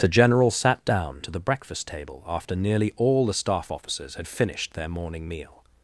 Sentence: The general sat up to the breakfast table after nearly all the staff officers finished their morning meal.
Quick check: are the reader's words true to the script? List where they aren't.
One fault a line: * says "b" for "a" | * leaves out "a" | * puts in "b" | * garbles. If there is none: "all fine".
* says "down" for "up"
* puts in "had"